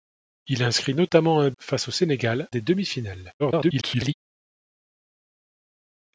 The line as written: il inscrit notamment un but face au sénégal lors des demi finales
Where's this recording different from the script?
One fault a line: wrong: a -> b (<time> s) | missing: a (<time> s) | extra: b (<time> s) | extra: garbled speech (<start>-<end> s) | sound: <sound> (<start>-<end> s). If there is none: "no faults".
missing: but (1.5 s)
missing: lors (2.5 s)
extra: garbled speech (3.4-4.1 s)